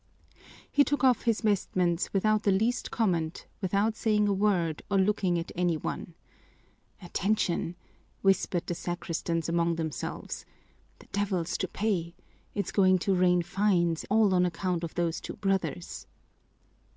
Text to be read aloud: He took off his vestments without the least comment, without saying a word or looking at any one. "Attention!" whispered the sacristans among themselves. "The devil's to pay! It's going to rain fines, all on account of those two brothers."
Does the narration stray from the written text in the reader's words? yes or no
no